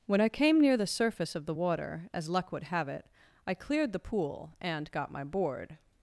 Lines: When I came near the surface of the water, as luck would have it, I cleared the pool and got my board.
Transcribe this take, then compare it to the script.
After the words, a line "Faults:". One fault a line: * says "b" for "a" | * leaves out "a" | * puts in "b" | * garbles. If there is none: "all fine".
When I came near the surface of the water, as luck would have it, I cleared the pool and got my board.
Faults:
all fine